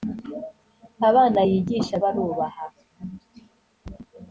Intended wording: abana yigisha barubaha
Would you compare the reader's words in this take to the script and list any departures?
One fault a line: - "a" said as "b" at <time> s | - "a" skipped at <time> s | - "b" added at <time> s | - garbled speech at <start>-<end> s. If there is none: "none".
none